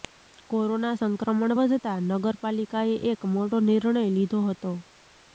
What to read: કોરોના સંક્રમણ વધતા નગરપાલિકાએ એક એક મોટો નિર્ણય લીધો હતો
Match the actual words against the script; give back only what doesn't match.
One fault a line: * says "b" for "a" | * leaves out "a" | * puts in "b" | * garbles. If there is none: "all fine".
* leaves out "એક"